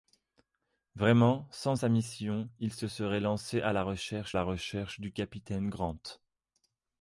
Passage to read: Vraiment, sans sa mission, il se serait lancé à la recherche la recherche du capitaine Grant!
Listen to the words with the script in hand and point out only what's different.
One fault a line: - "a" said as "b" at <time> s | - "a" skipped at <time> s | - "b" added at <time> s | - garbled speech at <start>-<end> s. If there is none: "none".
none